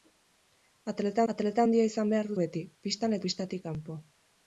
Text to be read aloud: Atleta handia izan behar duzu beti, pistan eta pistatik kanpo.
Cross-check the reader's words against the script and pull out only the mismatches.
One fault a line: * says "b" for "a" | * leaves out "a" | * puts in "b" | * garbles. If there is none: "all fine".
* puts in "atleta"
* leaves out "duzu"
* leaves out "eta"